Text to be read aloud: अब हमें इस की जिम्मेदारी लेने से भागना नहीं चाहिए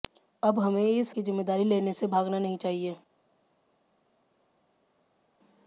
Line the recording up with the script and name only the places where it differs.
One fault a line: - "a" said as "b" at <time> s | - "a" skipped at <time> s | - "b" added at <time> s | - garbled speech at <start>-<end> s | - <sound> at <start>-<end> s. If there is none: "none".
none